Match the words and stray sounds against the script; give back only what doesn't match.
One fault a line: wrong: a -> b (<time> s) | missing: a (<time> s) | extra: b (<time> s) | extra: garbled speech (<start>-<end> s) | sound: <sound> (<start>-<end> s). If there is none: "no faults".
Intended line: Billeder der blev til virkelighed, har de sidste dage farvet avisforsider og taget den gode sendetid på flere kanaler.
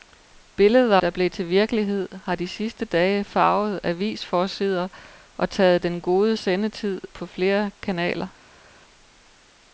no faults